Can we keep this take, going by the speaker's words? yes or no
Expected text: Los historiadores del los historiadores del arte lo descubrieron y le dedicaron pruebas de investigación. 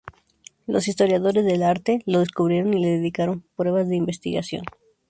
no